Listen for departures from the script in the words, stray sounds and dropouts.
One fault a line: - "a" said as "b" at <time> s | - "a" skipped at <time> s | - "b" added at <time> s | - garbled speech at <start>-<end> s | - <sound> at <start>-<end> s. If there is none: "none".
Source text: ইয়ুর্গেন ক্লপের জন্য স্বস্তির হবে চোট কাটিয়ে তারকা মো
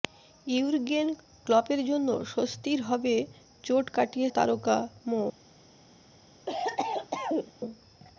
- cough at 6.5-7.5 s